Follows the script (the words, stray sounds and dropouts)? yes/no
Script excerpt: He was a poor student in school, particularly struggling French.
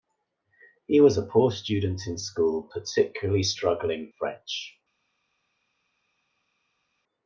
yes